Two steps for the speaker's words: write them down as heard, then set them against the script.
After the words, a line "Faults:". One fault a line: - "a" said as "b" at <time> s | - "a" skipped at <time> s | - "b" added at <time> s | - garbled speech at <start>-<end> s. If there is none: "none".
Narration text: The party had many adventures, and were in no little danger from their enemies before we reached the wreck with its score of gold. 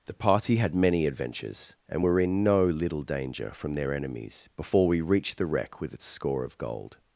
The party had many adventures, and were in no little danger from their enemies before we reached the wreck with its score of gold.
Faults:
none